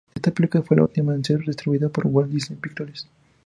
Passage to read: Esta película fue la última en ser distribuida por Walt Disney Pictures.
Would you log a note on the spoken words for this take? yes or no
no